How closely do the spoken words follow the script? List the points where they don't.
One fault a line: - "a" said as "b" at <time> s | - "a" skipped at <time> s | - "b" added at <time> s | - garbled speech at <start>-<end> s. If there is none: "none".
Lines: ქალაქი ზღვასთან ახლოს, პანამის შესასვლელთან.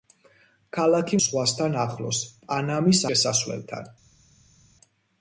none